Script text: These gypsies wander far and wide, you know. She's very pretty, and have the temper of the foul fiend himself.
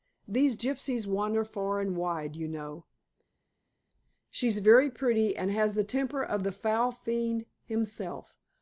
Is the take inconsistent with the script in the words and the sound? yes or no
yes